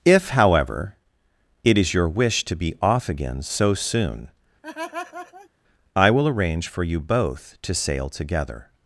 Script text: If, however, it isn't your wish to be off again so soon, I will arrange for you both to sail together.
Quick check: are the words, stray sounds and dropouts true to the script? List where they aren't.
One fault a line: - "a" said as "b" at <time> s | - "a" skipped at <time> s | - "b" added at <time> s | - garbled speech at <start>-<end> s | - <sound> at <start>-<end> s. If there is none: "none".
- "isn't" said as "is" at 1.8 s
- laugh at 4.6-5.5 s